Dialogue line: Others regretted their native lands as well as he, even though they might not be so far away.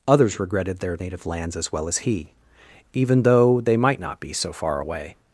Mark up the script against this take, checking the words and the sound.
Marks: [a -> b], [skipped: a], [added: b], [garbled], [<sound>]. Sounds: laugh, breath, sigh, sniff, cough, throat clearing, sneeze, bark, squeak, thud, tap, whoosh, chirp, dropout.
Others regretted their native lands as well as he, even though they might not be so far away.